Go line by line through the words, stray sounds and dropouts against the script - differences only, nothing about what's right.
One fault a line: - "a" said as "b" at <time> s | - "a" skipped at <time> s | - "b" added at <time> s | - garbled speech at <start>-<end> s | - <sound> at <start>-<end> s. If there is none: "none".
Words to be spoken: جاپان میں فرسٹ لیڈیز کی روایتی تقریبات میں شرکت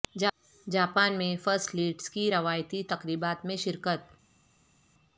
none